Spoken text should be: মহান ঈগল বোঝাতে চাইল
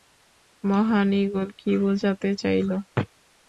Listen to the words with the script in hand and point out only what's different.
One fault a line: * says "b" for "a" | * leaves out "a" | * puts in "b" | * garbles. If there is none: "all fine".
* puts in "কী"